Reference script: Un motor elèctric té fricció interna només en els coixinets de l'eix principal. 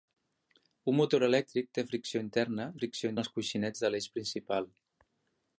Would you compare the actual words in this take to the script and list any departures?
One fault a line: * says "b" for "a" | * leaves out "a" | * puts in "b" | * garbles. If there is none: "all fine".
* says "fricció" for "només"